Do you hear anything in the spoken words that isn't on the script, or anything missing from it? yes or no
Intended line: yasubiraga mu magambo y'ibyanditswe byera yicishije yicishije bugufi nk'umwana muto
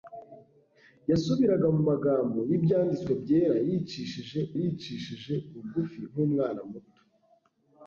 no